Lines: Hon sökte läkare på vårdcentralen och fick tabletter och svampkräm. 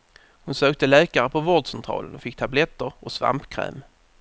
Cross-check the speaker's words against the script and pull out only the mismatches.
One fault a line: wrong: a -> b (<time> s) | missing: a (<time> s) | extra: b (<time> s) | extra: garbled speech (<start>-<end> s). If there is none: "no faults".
no faults